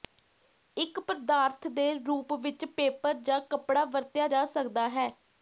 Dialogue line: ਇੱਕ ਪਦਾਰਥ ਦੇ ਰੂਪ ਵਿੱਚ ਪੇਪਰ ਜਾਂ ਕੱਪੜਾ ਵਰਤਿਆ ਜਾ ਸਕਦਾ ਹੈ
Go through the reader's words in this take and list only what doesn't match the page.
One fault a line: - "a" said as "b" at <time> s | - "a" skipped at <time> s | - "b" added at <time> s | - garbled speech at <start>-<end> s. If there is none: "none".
none